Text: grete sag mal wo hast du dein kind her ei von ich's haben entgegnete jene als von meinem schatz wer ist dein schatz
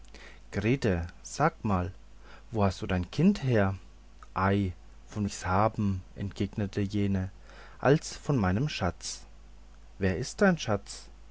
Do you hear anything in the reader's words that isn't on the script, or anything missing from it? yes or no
no